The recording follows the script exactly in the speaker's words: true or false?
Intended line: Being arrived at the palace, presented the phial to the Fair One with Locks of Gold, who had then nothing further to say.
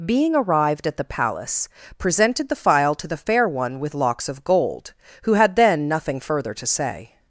true